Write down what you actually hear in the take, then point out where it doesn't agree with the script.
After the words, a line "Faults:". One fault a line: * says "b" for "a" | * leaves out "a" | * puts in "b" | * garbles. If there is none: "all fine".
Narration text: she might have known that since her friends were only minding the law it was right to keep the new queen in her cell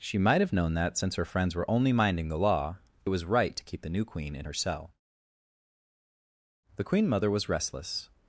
she might have known that since her friends were only minding the law it was right to keep the new queen in her cell the queen mother was restless
Faults:
* puts in "the queen mother was restless"